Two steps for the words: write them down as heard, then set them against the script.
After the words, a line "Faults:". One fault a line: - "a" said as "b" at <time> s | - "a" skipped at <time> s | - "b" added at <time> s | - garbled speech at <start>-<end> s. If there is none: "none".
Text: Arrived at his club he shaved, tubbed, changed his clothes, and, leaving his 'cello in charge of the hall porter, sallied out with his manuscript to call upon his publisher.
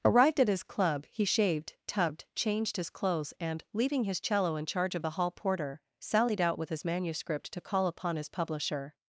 Arrived at his club he shaved, tubbed, changed his clothes, and, leaving his 'cello in charge of the hall porter, sallied out with his manuscript to call upon his publisher.
Faults:
none